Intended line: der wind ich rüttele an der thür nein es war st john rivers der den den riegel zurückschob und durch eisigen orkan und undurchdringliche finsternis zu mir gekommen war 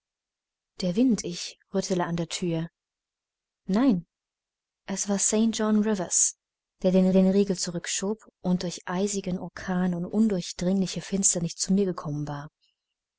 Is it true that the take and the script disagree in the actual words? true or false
false